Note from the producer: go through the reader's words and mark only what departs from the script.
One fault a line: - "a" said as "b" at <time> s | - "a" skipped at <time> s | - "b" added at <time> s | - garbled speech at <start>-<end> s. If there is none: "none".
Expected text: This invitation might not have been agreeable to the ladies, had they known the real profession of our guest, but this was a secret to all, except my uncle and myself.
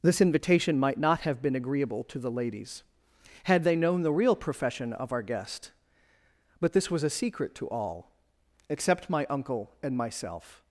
none